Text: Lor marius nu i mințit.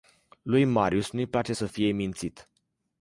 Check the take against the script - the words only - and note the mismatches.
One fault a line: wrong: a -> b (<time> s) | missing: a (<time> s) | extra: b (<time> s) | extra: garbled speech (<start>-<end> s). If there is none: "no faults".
wrong: Lor -> Lui (0.4 s)
extra: place să fie (1.3 s)